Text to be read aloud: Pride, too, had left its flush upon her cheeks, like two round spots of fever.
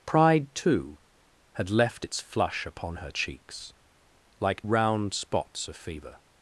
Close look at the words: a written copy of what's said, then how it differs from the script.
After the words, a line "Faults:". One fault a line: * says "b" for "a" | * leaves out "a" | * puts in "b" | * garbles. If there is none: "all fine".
Pride, too, had left its flush upon her cheeks, like round spots of fever.
Faults:
* leaves out "two"